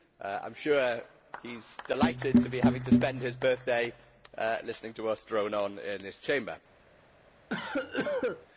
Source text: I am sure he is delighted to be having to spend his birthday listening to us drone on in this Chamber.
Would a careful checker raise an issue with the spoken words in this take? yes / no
no